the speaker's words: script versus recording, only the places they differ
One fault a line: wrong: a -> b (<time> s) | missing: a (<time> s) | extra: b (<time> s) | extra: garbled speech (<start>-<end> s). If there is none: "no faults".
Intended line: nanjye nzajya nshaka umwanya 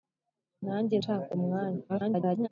missing: nzajya (0.9 s)
extra: garbled speech (1.9-2.5 s)